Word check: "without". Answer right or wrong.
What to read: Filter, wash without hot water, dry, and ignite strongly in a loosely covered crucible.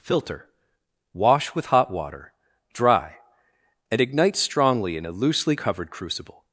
wrong